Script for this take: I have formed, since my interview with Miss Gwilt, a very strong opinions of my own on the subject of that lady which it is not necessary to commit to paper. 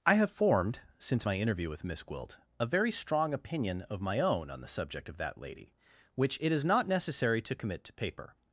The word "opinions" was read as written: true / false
false